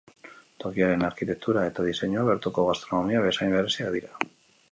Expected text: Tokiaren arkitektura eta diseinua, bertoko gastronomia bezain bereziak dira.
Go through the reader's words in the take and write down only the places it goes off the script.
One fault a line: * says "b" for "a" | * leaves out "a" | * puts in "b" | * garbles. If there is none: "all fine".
all fine